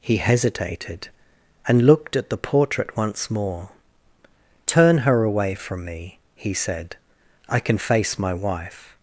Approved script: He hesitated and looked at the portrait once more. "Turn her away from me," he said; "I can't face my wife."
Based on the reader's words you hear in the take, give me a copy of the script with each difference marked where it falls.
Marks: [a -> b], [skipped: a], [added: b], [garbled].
He hesitated and looked at the portrait once more. "Turn her away from me," he said; "I [can't -> can] face my wife."